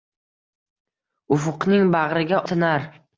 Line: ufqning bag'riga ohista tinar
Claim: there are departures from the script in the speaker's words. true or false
true